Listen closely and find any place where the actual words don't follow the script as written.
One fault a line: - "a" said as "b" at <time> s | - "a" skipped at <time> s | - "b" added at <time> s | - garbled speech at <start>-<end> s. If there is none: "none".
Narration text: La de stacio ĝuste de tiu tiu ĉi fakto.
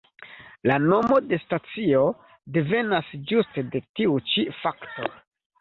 - "nomo" added at 0.8 s
- "devenas" added at 2.6 s
- "tiu" skipped at 4.2 s